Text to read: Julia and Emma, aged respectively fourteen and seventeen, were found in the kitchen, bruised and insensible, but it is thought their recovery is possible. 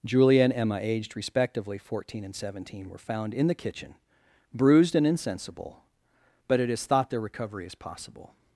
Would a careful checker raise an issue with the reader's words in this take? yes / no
no